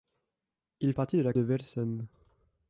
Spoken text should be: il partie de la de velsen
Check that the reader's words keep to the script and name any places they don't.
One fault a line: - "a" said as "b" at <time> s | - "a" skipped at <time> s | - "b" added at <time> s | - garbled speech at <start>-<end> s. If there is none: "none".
none